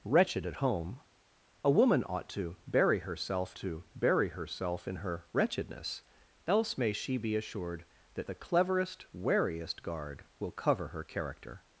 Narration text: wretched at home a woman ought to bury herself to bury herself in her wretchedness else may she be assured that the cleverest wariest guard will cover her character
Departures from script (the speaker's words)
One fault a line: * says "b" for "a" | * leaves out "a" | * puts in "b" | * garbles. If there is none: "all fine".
all fine